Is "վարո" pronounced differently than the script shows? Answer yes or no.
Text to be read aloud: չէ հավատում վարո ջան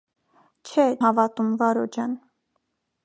no